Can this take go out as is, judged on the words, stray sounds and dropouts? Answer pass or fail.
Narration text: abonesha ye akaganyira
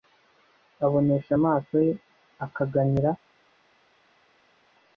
fail